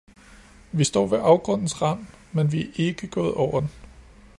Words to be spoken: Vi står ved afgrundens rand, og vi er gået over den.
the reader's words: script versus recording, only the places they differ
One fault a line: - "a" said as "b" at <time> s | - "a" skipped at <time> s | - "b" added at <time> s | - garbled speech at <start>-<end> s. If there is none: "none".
- "og" said as "men" at 2.3 s
- "ikke" added at 2.7 s